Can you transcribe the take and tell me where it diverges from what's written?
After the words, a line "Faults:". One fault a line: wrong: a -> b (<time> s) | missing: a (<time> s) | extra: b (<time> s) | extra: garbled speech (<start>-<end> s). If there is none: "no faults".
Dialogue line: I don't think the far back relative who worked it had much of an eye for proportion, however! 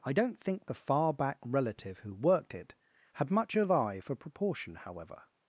I don't think the far back relative who worked it had much of eye for proportion, however!
Faults:
missing: an (3.7 s)